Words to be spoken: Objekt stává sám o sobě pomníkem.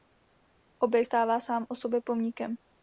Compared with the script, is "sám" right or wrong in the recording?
right